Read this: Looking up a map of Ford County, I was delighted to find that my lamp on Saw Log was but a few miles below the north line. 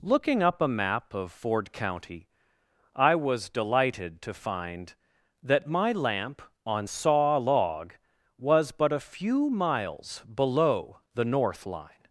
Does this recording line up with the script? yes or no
yes